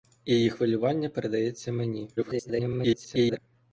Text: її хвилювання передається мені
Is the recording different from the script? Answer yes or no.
yes